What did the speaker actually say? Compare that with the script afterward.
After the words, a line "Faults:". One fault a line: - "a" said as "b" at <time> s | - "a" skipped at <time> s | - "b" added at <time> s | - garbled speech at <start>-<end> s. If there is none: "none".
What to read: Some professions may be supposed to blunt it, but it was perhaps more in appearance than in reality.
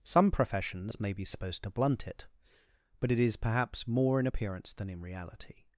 Some professions may be supposed to blunt it, but it is perhaps more in appearance than in reality.
Faults:
- "was" said as "is" at 3.2 s